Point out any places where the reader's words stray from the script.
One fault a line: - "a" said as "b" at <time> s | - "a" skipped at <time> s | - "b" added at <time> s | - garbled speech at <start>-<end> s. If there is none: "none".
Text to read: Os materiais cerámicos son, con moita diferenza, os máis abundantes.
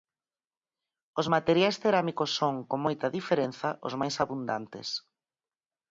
none